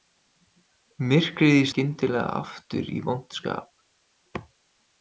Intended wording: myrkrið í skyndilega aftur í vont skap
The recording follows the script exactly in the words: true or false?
true